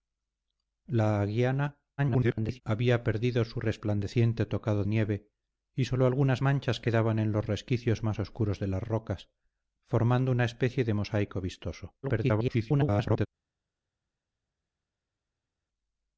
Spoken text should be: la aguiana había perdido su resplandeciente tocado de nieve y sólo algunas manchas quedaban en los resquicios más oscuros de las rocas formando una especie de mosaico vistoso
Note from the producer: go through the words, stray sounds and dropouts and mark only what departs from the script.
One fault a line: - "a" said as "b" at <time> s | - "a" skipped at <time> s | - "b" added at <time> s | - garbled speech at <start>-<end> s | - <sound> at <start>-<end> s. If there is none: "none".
- garbled speech at 2.0-2.6 s
- "de" skipped at 4.8 s
- garbled speech at 12.0-13.3 s